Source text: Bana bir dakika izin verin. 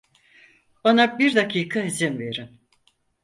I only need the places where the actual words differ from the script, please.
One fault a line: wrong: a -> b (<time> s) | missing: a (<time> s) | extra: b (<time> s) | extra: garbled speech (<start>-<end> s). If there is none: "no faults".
no faults